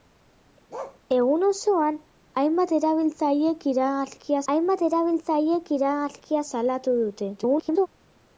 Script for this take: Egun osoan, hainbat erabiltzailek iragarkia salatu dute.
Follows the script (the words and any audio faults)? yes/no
no